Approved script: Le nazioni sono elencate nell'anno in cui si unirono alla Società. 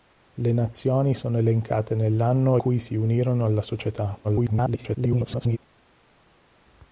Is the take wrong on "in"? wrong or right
wrong